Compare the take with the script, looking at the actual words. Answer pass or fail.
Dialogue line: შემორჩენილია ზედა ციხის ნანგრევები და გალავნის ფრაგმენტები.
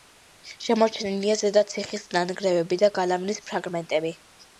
pass